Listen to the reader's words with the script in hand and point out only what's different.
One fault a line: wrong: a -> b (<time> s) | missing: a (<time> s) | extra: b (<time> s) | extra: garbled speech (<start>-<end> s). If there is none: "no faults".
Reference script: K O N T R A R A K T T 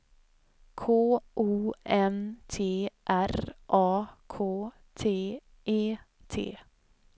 missing: R A (4.1 s)
extra: E (5.6 s)